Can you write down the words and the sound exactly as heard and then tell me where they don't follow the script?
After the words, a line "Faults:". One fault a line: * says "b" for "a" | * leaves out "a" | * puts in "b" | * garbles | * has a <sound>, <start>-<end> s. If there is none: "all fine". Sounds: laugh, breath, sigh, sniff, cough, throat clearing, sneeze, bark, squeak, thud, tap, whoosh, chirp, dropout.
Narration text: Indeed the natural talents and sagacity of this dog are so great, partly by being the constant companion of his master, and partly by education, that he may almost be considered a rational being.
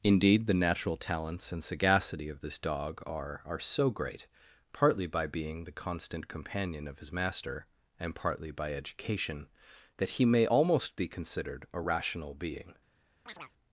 Indeed the natural talents and sagacity of this dog are are so great, partly by being the constant companion of his master, and partly by education, that he may almost be considered a rational being.
Faults:
* puts in "are"
* has a chirp, 13.3-13.5 s